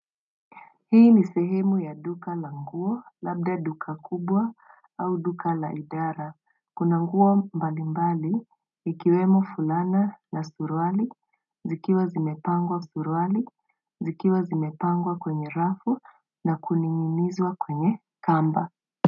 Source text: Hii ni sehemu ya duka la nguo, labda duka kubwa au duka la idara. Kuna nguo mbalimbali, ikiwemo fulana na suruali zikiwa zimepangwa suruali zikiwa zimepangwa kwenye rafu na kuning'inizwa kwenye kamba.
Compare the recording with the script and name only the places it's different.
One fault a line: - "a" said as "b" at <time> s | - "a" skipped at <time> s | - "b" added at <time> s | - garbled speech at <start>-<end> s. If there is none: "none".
none